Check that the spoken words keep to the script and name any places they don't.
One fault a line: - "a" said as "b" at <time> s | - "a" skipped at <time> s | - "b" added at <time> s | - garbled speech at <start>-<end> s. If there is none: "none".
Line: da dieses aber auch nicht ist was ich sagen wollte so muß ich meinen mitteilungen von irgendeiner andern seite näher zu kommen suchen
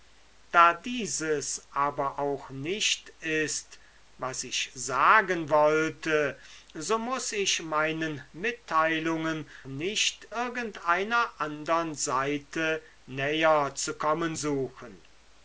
- "von" said as "nicht" at 9.6 s